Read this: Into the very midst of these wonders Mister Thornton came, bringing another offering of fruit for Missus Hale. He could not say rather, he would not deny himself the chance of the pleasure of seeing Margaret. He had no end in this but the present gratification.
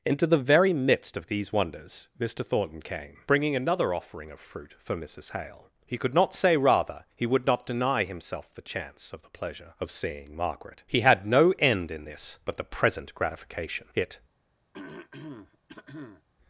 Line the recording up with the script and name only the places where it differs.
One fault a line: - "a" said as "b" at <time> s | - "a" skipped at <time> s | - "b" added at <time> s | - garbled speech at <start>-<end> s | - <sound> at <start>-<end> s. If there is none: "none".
- "It" added at 13.9 s
- throat clearing at 14.7-16.2 s